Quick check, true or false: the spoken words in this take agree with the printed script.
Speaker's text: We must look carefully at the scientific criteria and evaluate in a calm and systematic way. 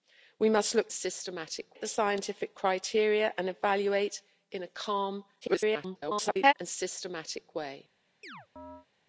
false